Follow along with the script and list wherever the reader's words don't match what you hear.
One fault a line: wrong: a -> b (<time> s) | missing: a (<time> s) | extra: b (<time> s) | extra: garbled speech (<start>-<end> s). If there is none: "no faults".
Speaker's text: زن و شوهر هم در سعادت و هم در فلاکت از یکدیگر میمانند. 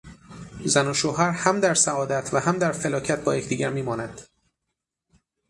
wrong: از -> با (3.2 s)